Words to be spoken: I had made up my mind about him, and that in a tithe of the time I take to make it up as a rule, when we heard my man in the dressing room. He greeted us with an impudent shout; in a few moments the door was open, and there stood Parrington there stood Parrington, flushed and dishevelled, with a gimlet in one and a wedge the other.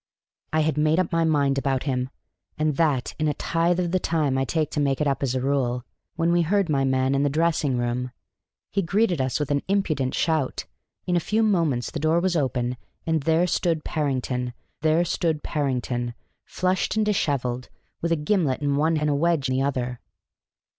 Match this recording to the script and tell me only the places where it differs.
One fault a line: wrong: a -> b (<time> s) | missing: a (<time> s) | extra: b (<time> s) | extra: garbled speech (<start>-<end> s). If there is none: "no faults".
no faults